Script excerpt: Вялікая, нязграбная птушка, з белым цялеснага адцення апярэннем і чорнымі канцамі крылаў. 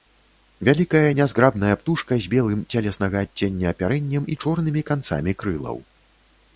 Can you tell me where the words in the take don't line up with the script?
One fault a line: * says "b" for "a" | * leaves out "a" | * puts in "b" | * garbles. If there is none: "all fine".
all fine